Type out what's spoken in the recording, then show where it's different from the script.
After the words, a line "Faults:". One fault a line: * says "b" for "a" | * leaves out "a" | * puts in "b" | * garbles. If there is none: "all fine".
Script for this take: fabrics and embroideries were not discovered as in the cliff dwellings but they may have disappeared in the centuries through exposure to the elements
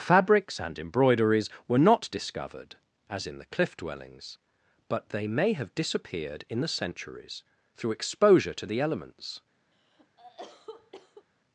fabrics and embroideries were not discovered as in the cliff dwellings but they may have disappeared in the centuries through exposure to the elements
Faults:
all fine